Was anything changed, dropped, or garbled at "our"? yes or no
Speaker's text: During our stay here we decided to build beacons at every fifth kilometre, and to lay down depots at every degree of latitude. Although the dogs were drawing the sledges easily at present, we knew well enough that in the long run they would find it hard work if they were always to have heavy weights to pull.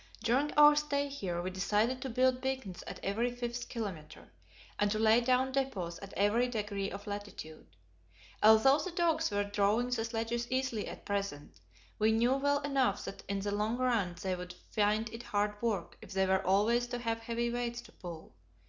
no